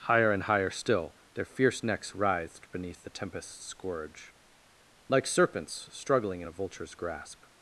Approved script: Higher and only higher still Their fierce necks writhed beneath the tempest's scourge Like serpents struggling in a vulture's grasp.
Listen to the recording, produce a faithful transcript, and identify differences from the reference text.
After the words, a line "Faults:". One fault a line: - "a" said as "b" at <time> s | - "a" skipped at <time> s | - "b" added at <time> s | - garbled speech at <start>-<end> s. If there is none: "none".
Higher and higher still Their fierce necks writhed beneath the tempest's scourge Like serpents struggling in a vulture's grasp.
Faults:
- "only" skipped at 0.4 s